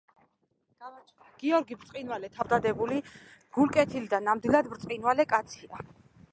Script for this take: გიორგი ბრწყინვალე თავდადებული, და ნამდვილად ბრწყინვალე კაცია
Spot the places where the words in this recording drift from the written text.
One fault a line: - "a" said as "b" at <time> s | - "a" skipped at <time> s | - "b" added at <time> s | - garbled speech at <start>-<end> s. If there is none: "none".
- "გულკეთილი" added at 3.6 s